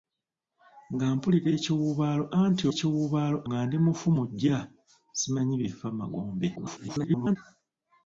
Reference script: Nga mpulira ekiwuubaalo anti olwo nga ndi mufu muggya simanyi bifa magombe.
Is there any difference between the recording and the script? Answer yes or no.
yes